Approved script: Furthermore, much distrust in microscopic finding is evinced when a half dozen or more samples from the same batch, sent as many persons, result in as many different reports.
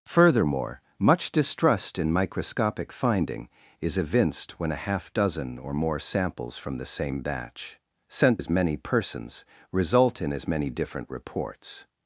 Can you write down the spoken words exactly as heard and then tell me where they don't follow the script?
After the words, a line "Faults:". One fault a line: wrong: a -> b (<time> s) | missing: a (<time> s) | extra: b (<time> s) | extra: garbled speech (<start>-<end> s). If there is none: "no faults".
Furthermore, much distrust in microscopic finding is evinced when a half dozen or more samples from the same batch, sent as many persons, result in as many different reports.
Faults:
no faults